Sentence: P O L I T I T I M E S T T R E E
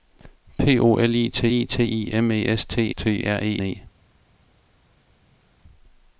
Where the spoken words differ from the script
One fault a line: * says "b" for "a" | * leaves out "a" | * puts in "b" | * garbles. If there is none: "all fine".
all fine